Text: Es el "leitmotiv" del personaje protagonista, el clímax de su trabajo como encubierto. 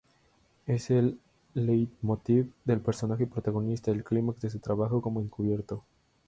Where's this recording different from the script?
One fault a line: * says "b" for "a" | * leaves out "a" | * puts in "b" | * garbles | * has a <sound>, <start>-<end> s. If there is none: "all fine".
all fine